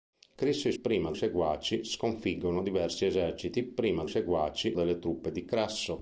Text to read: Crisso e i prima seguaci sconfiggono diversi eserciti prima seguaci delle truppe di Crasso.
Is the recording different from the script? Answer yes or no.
no